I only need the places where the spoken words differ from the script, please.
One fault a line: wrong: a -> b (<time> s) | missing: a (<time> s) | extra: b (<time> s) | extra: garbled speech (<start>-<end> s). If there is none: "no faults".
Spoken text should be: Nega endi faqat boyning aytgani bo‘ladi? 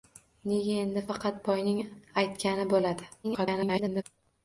extra: garbled speech (3.2-4.0 s)